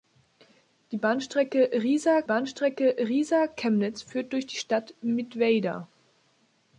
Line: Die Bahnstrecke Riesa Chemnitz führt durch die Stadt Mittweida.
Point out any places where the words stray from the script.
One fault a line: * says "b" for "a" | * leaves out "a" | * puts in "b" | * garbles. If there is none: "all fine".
* puts in "Bahnstrecke Riesa"